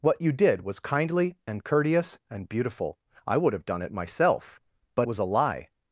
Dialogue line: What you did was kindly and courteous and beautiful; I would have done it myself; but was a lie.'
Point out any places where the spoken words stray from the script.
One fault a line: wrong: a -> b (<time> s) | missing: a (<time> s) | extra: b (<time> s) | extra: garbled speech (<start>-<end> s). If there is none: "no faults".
no faults